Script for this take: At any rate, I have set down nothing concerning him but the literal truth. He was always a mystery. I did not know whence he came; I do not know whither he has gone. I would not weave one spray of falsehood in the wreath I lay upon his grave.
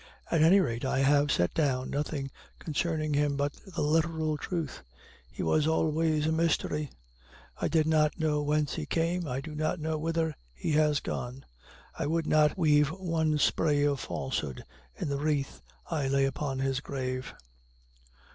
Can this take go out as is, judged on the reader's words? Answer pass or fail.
pass